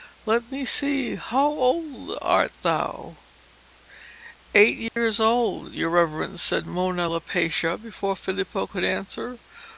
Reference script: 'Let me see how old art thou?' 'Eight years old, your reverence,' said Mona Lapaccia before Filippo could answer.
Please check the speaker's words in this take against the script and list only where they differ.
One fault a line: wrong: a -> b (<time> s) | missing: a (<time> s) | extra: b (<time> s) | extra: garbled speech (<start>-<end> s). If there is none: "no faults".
no faults